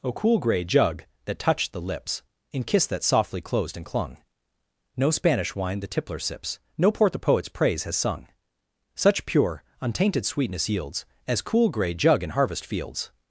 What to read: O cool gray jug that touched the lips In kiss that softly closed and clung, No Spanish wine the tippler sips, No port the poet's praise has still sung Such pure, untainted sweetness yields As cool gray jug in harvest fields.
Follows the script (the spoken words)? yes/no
no